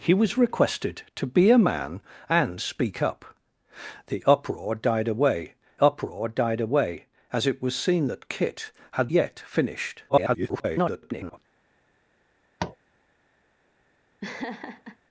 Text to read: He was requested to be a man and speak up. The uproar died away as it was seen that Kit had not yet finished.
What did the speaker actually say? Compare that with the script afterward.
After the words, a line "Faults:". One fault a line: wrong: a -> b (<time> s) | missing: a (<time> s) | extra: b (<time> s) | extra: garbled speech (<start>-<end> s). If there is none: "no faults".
He was requested to be a man and speak up. The uproar died away uproar died away as it was seen that Kit had yet finished. [garbled]
Faults:
extra: uproar died away (5.8 s)
missing: not (9.1 s)
extra: garbled speech (10.1-11.4 s)